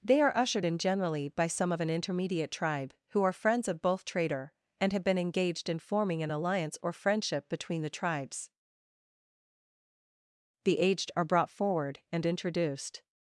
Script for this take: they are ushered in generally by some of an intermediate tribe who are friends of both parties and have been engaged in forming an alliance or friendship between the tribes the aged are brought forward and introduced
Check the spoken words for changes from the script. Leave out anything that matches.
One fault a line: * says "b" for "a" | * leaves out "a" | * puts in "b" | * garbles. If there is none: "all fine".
* says "trader" for "parties"